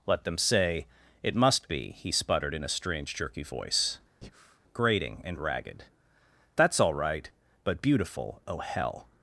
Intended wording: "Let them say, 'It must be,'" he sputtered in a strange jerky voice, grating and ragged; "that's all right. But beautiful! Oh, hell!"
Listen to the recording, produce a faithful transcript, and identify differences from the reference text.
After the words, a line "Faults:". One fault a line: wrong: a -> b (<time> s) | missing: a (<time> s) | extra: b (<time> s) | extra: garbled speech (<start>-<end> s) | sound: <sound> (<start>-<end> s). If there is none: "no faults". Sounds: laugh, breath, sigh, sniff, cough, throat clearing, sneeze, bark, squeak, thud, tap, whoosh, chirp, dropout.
"Let them say, 'It must be,'" he sputtered in a strange jerky voice, grating and ragged; "that's all right. But beautiful! Oh, hell!"
Faults:
sound: breath (4.2-4.6 s)